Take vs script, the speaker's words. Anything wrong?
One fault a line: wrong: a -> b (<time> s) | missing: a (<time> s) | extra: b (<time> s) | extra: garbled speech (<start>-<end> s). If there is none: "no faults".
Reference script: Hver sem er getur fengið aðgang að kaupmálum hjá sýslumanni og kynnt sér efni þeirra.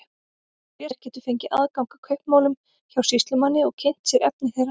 missing: sem (0.9 s)